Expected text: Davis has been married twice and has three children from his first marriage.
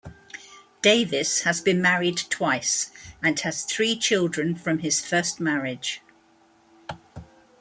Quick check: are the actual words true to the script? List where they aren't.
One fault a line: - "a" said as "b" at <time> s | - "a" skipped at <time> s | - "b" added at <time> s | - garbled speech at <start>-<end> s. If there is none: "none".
none